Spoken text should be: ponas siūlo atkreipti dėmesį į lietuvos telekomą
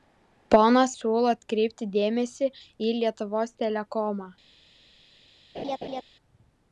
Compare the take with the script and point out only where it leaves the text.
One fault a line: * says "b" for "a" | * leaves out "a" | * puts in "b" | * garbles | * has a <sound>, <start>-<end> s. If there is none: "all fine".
* has a laugh, 5.5-6.0 s